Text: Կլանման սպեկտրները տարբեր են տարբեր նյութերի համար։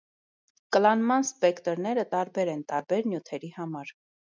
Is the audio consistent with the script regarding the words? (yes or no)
yes